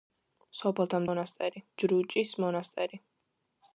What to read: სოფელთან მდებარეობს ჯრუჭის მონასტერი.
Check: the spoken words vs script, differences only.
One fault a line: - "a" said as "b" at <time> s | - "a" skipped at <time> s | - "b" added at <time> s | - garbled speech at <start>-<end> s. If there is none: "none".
- "მდებარეობს" said as "მონასტერი" at 1.1 s